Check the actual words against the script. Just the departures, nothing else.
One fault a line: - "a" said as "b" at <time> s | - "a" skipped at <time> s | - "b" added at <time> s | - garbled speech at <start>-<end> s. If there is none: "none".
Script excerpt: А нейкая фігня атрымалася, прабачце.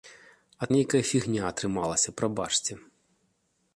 none